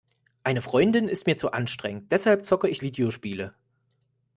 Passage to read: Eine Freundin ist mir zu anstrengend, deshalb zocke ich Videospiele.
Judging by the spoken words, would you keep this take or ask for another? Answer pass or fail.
pass